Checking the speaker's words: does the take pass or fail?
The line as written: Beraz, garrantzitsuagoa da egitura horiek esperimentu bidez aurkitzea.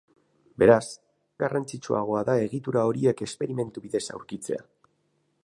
pass